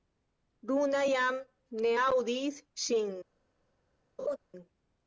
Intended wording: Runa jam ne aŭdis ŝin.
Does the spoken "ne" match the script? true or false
true